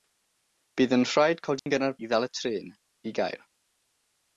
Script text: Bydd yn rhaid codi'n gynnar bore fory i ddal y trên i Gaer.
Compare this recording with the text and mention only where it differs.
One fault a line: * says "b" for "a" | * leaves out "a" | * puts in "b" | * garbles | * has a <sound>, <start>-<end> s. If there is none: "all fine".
* has a dropout, 1.6-1.7 s
* leaves out "bore fory"